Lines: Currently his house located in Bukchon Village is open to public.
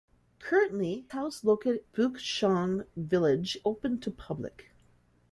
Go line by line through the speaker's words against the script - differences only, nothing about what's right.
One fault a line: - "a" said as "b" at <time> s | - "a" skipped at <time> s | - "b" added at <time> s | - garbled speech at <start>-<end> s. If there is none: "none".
- "his" skipped at 1.1 s
- "in" skipped at 1.8 s
- "is" skipped at 3.6 s